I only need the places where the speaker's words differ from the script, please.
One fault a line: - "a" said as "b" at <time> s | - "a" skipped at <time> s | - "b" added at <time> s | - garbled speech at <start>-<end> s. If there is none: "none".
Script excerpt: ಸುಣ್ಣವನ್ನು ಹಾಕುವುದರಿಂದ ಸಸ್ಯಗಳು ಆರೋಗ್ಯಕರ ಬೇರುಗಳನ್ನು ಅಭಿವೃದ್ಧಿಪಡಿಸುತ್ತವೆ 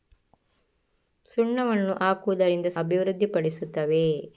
- "ಸಸ್ಯಗಳು ಆರೋಗ್ಯಕರ ಬೇರುಗಳನ್ನು" skipped at 2.7 s